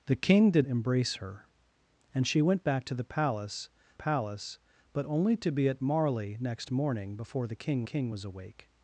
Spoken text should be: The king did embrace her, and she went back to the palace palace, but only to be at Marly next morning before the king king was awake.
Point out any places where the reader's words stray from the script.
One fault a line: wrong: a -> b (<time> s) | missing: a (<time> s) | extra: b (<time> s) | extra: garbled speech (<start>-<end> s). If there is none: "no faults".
no faults